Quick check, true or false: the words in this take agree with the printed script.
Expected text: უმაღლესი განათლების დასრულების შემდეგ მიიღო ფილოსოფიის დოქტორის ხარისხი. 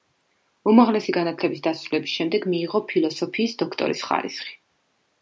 true